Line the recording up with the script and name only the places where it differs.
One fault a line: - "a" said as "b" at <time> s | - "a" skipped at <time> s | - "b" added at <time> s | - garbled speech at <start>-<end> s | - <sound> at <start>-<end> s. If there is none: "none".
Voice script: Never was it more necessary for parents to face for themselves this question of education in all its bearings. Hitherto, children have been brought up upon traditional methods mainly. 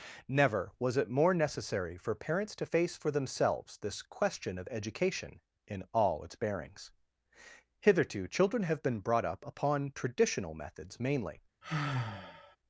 - sigh at 11.6-12.6 s